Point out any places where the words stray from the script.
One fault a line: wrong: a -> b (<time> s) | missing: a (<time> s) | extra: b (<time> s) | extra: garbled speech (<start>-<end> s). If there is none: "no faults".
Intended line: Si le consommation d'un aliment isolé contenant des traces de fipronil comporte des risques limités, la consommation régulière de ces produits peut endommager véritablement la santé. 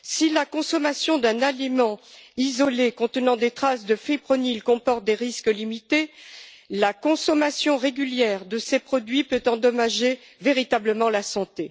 wrong: le -> la (0.3 s)